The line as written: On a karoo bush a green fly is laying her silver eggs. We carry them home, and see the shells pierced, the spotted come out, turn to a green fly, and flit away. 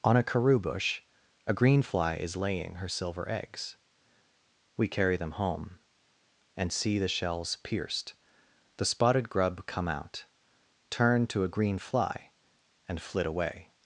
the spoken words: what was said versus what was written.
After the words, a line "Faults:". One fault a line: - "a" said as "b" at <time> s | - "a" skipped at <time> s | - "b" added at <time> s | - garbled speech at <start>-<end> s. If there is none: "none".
On a karoo bush a green fly is laying her silver eggs. We carry them home, and see the shells pierced, the spotted grub come out, turn to a green fly, and flit away.
Faults:
- "grub" added at 9.3 s